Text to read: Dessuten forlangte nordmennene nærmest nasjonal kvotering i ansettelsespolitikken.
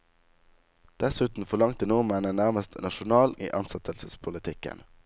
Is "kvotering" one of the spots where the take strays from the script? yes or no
yes